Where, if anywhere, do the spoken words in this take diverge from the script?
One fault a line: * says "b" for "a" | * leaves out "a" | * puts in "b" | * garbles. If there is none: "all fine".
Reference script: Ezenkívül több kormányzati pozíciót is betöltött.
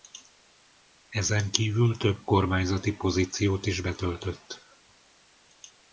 all fine